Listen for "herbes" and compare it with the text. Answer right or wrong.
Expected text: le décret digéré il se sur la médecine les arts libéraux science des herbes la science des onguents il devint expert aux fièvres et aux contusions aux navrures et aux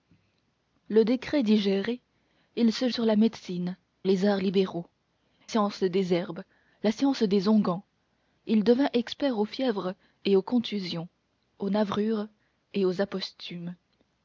right